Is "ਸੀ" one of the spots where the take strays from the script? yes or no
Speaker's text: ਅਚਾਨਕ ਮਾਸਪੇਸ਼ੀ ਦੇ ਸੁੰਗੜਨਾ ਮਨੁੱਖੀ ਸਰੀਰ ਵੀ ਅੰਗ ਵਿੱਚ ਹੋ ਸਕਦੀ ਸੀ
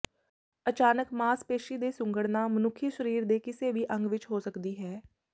yes